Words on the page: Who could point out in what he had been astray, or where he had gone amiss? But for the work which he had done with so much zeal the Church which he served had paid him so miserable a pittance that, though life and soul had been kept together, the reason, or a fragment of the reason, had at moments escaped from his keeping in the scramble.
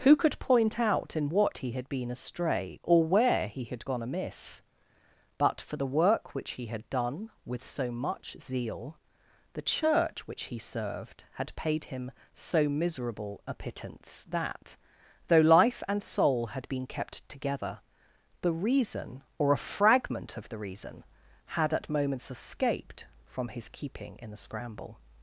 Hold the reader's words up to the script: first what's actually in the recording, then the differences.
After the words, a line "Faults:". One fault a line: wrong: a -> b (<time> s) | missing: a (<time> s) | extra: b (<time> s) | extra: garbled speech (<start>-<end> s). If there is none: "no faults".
Who could point out in what he had been astray, or where he had gone amiss? But for the work which he had done with so much zeal the Church which he served had paid him so miserable a pittance that, though life and soul had been kept together, the reason, or a fragment of the reason, had at moments escaped from his keeping in the scramble.
Faults:
no faults